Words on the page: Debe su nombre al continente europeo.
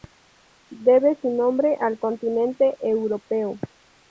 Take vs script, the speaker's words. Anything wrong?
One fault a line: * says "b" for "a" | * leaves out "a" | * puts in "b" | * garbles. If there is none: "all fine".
all fine